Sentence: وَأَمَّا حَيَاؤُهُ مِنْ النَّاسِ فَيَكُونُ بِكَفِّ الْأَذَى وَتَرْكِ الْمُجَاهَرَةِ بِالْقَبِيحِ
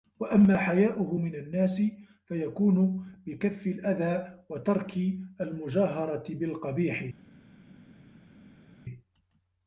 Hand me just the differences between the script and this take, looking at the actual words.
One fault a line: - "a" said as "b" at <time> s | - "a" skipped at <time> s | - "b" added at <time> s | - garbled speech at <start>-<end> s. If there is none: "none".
none